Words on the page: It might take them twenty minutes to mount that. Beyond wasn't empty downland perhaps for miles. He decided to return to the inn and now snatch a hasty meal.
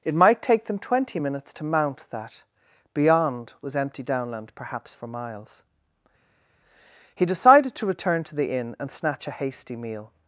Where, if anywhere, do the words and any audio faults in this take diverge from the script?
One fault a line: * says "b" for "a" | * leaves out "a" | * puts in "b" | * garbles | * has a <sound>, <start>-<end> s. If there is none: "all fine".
* says "was" for "wasn't"
* leaves out "now"